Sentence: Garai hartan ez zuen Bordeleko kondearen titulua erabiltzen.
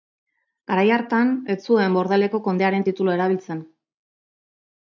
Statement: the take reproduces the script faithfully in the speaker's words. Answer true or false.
true